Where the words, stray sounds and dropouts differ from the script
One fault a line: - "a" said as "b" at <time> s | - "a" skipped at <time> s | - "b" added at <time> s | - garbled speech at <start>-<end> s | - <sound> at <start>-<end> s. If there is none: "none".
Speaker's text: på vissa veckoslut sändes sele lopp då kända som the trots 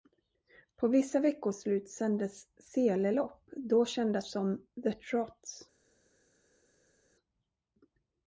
none